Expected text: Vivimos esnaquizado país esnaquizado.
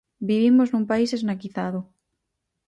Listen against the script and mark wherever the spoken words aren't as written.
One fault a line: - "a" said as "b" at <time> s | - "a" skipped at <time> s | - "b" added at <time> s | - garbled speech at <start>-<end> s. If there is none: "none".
- "esnaquizado" said as "nun" at 0.7 s